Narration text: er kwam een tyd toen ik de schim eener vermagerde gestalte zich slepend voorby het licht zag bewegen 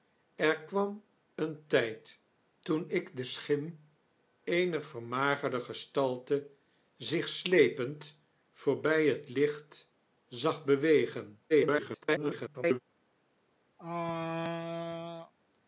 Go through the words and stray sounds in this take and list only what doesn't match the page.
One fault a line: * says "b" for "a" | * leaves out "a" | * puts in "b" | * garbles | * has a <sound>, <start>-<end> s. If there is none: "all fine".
* garbles
* has a throat clearing, 13.8-15.3 s